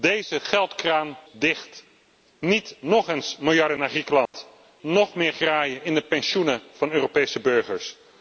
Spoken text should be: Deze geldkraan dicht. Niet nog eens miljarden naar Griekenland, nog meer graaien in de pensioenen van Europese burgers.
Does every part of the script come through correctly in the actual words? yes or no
yes